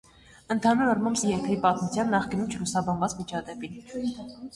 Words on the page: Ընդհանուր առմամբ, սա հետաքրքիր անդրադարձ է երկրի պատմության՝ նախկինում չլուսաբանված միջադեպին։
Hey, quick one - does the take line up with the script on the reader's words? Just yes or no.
no